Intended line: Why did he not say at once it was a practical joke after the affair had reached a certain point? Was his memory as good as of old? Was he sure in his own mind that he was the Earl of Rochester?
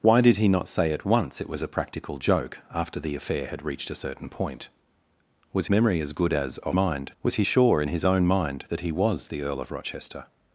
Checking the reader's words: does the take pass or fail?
fail